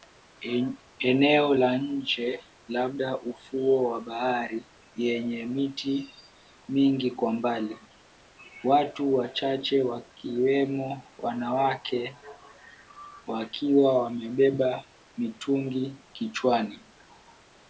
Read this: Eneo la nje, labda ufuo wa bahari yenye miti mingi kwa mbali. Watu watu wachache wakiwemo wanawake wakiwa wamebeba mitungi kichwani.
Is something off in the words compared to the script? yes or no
yes